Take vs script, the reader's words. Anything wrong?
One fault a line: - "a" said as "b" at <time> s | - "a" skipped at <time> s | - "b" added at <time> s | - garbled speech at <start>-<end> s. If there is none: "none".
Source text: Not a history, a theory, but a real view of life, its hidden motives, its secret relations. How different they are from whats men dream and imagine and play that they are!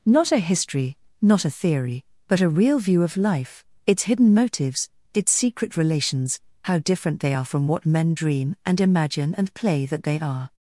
- "not" added at 1.2 s
- "whats" said as "what" at 7.7 s